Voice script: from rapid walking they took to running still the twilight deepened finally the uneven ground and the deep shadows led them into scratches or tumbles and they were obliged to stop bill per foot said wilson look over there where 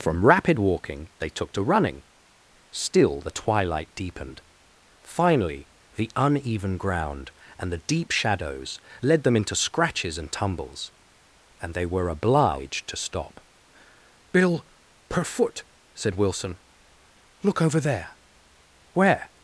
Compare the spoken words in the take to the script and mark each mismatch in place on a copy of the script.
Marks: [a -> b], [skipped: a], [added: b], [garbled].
from rapid walking they took to running still the twilight deepened finally the uneven ground and the deep shadows led them into scratches [or -> and] tumbles and they were obliged to stop bill per foot said wilson look over there where